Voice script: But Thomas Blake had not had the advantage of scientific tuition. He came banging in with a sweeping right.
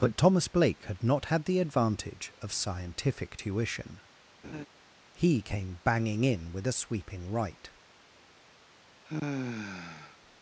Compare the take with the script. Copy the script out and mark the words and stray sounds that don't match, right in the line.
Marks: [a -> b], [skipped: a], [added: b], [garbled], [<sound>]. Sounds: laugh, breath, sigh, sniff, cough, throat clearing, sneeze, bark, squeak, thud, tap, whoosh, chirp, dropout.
But Thomas Blake had not had the advantage of scientific tuition. [laugh] He came banging in with a sweeping right. [sigh]